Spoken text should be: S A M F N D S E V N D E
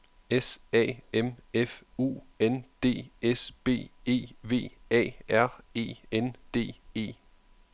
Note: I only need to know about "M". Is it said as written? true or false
true